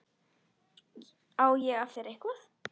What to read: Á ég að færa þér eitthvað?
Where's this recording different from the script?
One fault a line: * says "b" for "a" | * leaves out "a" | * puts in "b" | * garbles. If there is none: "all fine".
* leaves out "færa"